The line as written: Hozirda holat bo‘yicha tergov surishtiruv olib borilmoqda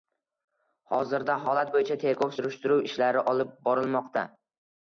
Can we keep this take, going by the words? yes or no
no